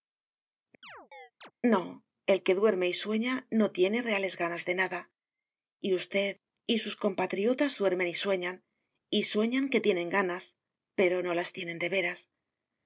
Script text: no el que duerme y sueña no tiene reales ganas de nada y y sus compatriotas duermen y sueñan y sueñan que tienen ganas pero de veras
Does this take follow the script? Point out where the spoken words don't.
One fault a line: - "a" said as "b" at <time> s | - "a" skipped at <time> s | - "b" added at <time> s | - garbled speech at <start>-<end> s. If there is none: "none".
- "usted" added at 5.9 s
- "no las tienen" added at 11.2 s